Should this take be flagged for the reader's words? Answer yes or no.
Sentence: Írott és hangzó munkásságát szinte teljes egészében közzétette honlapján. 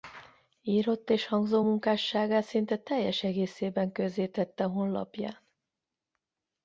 no